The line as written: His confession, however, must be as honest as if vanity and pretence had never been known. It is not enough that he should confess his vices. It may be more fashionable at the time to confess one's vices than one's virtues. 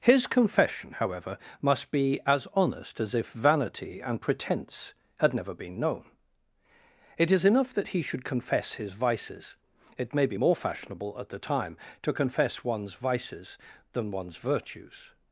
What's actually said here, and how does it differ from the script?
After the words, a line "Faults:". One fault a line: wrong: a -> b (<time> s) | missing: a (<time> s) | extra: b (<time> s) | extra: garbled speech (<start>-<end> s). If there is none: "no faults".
His confession, however, must be as honest as if vanity and pretence had never been known. It is enough that he should confess his vices. It may be more fashionable at the time to confess one's vices than one's virtues.
Faults:
missing: not (7.5 s)